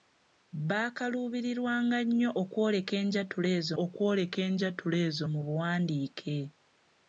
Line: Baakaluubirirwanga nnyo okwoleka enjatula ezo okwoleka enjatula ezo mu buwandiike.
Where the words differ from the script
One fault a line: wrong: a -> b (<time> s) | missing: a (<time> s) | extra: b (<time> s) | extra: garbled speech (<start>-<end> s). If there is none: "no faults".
no faults